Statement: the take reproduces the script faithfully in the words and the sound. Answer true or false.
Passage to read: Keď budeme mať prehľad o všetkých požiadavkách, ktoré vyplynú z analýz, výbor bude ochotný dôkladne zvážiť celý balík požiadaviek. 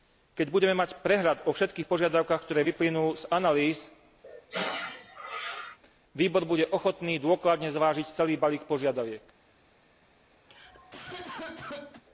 false